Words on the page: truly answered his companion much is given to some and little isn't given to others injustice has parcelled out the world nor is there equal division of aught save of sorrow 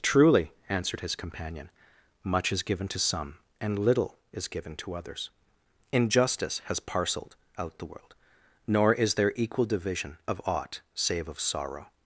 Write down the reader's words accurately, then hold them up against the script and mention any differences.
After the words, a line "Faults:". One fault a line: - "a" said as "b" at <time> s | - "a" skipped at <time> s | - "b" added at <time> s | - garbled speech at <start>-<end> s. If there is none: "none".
truly answered his companion much is given to some and little is given to others injustice has parcelled out the world nor is there equal division of aught save of sorrow
Faults:
- "isn't" said as "is" at 4.3 s